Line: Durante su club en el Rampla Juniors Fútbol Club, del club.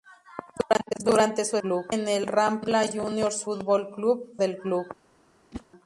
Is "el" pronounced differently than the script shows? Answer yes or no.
no